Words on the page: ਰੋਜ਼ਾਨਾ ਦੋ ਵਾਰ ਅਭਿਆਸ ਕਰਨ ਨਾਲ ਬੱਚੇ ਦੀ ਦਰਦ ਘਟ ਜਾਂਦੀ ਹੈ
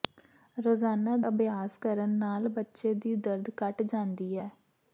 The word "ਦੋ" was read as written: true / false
false